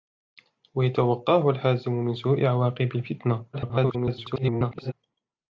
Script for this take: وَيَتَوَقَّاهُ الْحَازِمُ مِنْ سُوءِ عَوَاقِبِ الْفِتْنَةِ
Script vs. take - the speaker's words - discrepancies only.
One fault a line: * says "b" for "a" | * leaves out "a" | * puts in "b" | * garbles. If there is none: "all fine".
* garbles